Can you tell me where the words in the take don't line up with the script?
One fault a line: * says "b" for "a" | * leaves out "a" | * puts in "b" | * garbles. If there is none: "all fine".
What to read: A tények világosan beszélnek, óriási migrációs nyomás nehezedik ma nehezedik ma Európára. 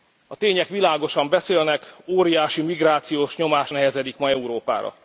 * leaves out "nehezedik ma"